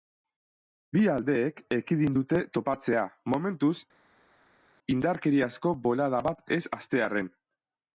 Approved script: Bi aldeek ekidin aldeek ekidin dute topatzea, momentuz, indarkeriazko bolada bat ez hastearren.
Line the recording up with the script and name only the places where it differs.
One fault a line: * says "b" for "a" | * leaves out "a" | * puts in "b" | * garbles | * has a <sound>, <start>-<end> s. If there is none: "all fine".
* leaves out "aldeek ekidin"